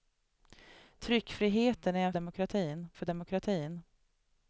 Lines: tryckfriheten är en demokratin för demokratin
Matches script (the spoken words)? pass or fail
pass